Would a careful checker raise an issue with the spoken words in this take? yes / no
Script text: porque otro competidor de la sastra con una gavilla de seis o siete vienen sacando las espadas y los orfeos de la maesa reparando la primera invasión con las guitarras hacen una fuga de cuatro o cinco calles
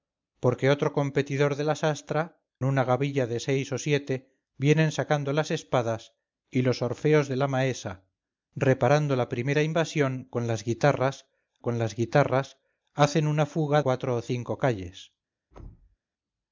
yes